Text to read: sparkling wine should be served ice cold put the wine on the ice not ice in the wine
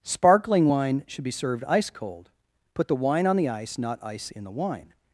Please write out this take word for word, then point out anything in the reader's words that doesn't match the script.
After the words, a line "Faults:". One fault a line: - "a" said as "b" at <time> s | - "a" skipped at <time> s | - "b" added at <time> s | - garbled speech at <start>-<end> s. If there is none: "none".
sparkling wine should be served ice cold put the wine on the ice not ice in the wine
Faults:
none